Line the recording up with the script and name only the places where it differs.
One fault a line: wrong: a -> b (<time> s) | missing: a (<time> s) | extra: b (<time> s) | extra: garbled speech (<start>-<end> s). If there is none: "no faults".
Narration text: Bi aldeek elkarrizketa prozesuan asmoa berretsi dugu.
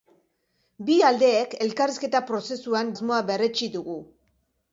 no faults